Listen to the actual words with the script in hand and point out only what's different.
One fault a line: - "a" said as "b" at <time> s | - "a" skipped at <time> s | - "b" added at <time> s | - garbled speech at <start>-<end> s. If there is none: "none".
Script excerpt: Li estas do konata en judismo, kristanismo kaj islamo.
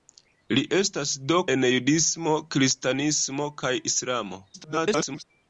- "konata" skipped at 1.4 s
- garbled speech at 4.5-5.2 s